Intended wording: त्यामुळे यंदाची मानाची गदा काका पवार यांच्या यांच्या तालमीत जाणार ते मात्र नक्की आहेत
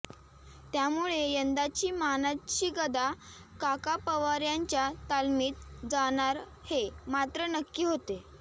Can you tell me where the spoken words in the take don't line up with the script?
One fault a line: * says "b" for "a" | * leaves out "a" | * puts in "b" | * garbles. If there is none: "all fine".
* leaves out "यांच्या"
* says "हे" for "ते"
* says "होते" for "आहेत"